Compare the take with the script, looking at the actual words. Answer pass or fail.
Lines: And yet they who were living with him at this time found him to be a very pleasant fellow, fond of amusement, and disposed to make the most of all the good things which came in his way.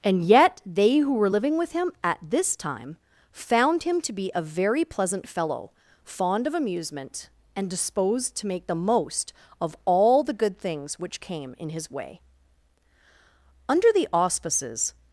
fail